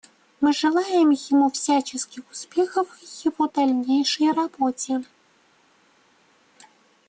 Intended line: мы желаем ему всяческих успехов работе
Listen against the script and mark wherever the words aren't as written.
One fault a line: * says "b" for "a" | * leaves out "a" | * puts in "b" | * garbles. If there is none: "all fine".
* puts in "в его дальнейшей"